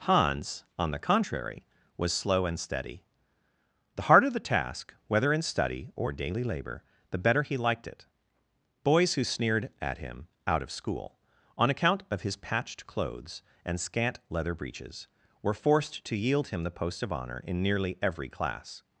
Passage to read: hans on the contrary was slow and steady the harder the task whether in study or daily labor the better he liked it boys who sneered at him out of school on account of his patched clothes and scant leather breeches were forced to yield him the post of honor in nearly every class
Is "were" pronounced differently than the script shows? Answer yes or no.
no